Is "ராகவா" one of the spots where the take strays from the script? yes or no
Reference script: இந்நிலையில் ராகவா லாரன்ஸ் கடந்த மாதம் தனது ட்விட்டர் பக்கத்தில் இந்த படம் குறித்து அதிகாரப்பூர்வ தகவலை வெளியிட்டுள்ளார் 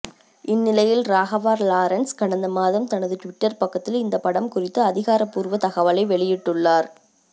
no